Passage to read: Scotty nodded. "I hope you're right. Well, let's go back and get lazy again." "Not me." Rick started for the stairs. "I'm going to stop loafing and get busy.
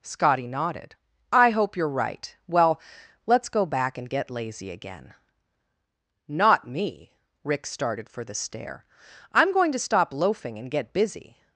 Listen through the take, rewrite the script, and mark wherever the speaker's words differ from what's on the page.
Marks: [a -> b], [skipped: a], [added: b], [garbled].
Scotty nodded. "I hope you're right. Well, let's go back and get lazy again." "Not me." Rick started for the [stairs. -> stair] "I'm going to stop loafing and get busy.